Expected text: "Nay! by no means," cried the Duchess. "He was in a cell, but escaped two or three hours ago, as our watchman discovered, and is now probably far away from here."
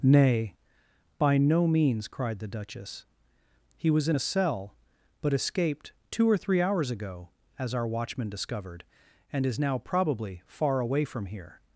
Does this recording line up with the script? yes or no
yes